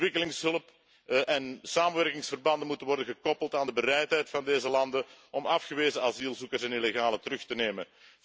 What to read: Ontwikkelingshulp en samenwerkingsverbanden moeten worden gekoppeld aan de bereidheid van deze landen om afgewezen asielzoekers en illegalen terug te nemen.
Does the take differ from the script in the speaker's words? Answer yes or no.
no